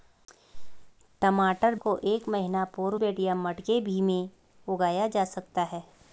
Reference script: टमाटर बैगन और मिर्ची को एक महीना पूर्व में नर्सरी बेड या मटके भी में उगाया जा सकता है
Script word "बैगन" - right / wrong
wrong